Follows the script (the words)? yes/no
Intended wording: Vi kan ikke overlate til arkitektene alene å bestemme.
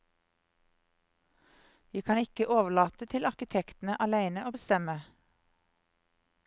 yes